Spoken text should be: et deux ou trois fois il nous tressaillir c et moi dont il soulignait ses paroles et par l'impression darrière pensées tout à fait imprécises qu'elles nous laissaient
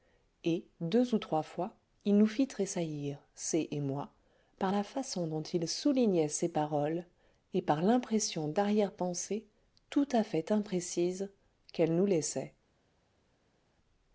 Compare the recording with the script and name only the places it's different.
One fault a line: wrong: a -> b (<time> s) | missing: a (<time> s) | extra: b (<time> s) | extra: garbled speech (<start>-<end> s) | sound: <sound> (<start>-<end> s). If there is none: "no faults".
extra: fit (2.2 s)
extra: par la façon (4.6 s)